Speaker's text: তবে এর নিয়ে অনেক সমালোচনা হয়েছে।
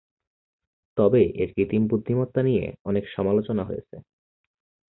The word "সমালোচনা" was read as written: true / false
true